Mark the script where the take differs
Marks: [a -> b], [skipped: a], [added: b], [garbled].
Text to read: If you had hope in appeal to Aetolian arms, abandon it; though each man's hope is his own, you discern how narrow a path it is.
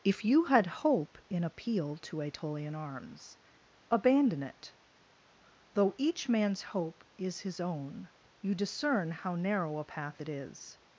If you had hope in appeal to Aetolian arms, abandon it; though each man's hope is his own, you discern how narrow a path it is.